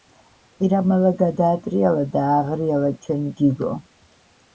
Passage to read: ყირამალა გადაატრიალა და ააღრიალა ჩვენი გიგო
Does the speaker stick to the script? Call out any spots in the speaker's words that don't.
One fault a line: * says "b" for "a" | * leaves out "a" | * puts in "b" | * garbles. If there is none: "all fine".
all fine